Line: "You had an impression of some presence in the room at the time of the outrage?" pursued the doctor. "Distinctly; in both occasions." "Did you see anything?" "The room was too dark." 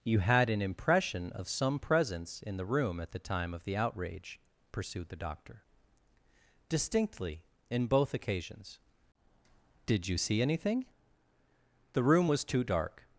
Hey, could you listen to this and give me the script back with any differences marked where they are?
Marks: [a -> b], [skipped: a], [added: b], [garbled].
"You had an impression of some presence in the room at the time of the outrage?" pursued the doctor. "Distinctly; in both occasions." "Did you see anything?" "The room was too dark."